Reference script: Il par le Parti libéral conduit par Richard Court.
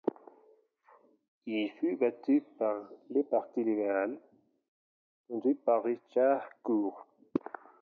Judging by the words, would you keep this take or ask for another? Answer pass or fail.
fail